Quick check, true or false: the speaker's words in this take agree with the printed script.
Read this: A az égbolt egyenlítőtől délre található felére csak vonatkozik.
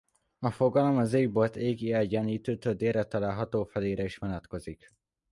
false